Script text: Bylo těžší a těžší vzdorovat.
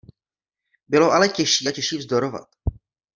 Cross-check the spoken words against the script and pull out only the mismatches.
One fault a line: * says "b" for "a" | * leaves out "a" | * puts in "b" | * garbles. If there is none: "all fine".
* puts in "ale"